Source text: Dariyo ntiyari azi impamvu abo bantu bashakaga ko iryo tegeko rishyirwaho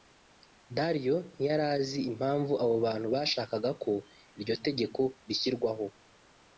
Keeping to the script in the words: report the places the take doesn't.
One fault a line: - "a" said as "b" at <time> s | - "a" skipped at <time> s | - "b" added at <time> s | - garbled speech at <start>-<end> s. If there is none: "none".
none